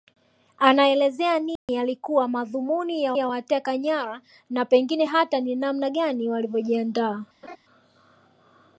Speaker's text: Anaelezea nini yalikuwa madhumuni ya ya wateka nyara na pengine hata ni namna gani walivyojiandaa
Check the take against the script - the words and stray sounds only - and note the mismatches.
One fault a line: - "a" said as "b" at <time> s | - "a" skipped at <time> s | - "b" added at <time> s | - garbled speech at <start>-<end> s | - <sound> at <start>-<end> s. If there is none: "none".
- dropout at 1.6-1.7 s
- laugh at 7.4-7.6 s